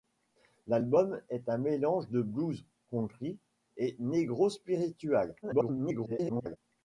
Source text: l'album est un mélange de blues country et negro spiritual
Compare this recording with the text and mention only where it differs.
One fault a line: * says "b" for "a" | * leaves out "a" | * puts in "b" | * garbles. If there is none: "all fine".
* garbles